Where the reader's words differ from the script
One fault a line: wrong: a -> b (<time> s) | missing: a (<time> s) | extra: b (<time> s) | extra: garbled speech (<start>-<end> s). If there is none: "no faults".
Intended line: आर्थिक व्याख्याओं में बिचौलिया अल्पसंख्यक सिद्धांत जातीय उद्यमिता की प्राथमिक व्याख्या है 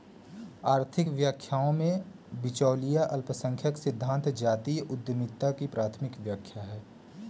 no faults